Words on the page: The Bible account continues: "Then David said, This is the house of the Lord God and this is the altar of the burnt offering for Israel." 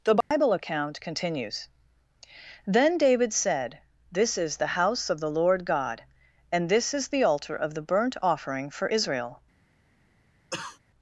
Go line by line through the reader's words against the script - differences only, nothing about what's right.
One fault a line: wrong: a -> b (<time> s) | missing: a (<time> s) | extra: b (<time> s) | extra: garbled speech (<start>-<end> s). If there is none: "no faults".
no faults